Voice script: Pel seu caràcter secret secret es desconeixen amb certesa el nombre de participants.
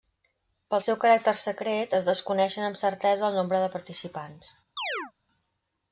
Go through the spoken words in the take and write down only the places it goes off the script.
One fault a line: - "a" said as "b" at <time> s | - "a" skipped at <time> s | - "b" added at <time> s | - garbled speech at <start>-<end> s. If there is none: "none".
- "secret" skipped at 2.0 s